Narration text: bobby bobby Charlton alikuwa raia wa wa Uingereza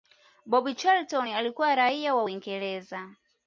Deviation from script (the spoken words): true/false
true